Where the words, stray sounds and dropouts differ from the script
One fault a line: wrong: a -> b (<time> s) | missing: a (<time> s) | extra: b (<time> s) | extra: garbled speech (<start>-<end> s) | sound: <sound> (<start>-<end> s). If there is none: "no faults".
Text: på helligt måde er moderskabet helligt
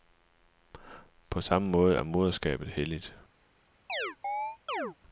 wrong: helligt -> samme (1.4 s)
sound: chirp (3.9-5.0 s)